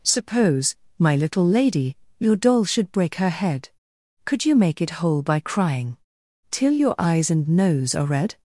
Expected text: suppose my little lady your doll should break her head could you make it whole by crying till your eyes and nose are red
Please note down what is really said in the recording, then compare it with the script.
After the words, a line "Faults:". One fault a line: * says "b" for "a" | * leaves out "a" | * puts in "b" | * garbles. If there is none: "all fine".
suppose my little lady your doll should break her head could you make it whole by crying till your eyes and nose are red
Faults:
all fine